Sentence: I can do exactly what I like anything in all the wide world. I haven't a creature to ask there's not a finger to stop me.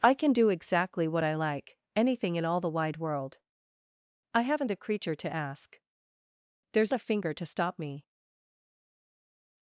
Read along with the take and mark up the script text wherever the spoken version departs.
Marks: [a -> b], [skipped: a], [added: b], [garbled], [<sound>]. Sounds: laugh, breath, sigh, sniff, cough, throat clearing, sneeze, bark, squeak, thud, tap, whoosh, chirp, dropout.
I can do exactly what I like anything in all the wide world. I haven't a creature to ask there's [skipped: not] a finger to stop me.